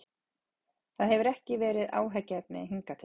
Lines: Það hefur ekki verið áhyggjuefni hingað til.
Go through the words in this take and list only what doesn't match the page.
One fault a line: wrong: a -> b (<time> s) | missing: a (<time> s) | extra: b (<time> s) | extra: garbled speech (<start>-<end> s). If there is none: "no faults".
no faults